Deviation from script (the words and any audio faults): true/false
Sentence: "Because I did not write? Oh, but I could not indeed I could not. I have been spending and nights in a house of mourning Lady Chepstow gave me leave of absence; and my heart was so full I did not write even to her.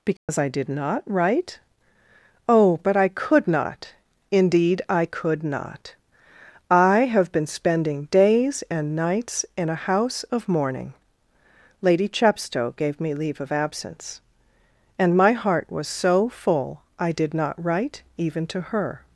true